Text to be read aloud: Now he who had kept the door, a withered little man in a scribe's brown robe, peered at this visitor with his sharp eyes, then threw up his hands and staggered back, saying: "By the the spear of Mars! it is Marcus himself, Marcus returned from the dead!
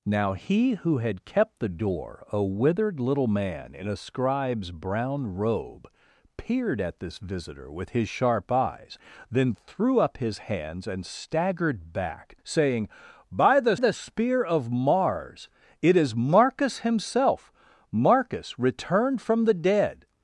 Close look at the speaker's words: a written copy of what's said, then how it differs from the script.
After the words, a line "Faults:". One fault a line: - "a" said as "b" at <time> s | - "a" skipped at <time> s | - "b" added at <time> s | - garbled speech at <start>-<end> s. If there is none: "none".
Now he who had kept the door, a withered little man in a scribe's brown robe, peered at this visitor with his sharp eyes, then threw up his hands and staggered back, saying: "By the the spear of Mars! it is Marcus himself, Marcus returned from the dead!
Faults:
none